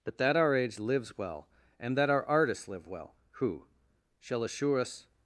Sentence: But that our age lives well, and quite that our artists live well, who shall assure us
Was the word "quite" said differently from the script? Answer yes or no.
yes